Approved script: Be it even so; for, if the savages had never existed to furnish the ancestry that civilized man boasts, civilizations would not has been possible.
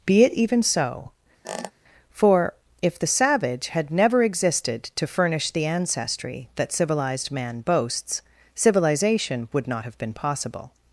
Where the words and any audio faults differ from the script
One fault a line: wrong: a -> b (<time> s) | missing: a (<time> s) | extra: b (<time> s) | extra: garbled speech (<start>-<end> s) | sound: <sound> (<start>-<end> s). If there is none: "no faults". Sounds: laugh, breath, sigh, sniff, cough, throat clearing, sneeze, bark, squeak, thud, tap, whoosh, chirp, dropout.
sound: squeak (1.4-1.7 s)
wrong: savages -> savage (3.1 s)
wrong: civilizations -> civilization (8.5 s)
wrong: has -> have (9.8 s)